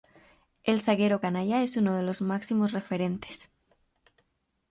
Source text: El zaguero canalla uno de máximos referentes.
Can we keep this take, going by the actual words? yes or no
no